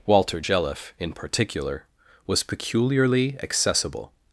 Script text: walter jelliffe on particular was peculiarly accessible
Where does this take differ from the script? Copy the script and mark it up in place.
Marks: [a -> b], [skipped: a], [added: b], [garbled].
walter jelliffe [on -> in] particular was peculiarly accessible